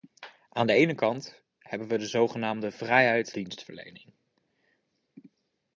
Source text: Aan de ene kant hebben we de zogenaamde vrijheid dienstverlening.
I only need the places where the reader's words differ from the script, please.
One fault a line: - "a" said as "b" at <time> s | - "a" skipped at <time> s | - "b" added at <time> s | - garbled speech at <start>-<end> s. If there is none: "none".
none